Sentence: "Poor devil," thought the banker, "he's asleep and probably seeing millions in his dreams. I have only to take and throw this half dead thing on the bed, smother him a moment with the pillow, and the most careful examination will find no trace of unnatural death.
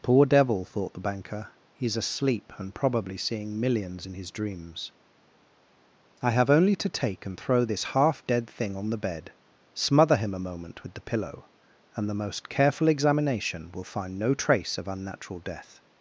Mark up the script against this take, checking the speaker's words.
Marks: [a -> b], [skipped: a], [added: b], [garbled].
"Poor devil," thought the banker, "he's asleep and probably seeing millions in his dreams. I have only to take and throw this half dead thing on the bed, smother him a moment with the pillow, and the most careful examination will find no trace of unnatural death.